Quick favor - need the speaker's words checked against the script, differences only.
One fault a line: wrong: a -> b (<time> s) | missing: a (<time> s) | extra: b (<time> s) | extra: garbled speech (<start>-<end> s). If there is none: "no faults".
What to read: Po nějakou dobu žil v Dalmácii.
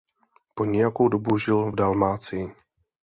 no faults